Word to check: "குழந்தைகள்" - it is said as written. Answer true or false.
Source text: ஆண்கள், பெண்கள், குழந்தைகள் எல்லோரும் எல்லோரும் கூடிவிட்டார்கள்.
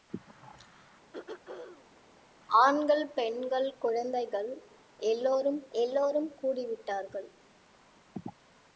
true